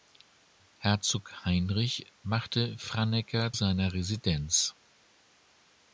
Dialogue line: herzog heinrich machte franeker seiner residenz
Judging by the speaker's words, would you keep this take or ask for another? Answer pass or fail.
pass